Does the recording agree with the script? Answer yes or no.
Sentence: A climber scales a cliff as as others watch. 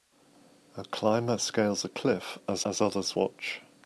yes